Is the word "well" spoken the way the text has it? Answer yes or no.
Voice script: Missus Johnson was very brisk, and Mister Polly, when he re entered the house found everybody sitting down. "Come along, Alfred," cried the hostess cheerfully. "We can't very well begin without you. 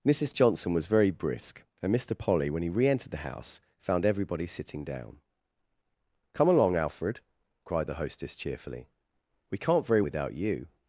no